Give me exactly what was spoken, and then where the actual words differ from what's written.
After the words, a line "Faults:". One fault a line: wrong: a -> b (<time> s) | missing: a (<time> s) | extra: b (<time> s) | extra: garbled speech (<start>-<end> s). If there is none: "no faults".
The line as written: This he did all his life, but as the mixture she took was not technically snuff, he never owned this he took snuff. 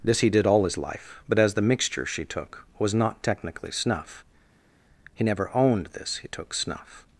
This he did all his life, but as the mixture she took was not technically snuff, he never owned this he took snuff.
Faults:
no faults